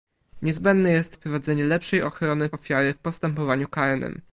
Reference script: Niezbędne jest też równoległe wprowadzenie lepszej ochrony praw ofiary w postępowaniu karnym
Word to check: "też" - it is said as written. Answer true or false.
false